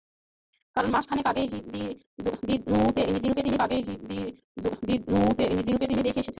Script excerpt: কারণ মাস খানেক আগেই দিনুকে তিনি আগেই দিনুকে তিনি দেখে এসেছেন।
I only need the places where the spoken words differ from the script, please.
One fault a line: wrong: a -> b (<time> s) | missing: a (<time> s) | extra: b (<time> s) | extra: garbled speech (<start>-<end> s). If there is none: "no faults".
no faults